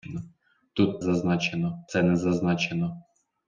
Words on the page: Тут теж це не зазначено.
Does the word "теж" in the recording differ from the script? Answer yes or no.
yes